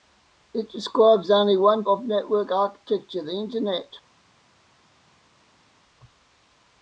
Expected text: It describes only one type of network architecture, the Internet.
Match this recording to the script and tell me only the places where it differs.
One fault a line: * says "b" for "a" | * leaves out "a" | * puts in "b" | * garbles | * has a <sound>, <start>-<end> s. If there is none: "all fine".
* leaves out "type"